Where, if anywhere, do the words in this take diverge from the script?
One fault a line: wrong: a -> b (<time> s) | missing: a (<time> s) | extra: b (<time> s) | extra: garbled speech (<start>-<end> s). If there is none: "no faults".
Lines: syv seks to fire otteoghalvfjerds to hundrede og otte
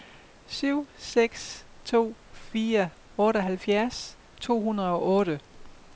no faults